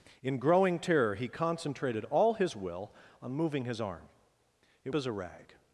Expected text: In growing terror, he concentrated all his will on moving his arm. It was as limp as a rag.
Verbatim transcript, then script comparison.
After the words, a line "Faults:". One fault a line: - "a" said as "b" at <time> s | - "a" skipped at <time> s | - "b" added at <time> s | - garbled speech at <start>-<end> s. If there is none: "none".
In growing terror, he concentrated all his will on moving his arm. It as a rag.
Faults:
- "was as limp" skipped at 4.9 s